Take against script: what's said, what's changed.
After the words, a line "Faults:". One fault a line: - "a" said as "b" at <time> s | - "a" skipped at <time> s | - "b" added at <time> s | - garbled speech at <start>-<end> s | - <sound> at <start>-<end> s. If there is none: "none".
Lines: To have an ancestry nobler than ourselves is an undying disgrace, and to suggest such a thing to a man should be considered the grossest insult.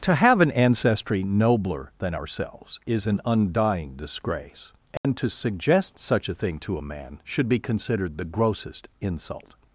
To have an ancestry nobler than ourselves is an undying disgrace, and to suggest such a thing to a man should be considered the grossest insult.
Faults:
- dropout at 5.0-5.0 s